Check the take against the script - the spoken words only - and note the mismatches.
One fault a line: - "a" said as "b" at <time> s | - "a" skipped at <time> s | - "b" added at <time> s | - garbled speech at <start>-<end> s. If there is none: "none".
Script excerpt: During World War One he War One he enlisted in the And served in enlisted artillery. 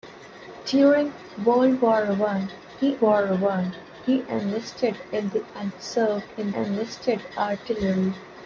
none